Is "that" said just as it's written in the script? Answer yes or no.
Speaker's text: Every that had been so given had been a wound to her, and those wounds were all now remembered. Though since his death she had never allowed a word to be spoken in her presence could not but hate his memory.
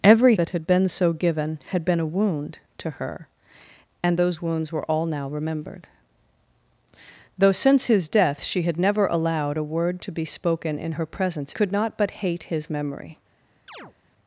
yes